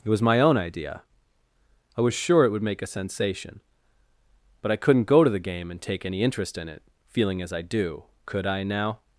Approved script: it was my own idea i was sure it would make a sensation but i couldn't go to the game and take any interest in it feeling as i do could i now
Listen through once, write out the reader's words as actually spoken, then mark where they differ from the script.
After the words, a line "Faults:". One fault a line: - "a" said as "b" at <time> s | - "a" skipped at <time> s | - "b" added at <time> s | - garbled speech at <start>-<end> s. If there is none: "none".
it was my own idea i was sure it would make a sensation but i couldn't go to the game and take any interest in it feeling as i do could i now
Faults:
none